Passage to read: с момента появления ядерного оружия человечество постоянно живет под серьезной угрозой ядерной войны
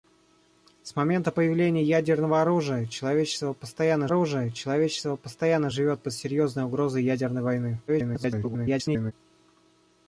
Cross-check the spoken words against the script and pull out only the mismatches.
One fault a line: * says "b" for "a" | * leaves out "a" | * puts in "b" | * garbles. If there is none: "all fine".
* puts in "оружия человечество постоянно"
* garbles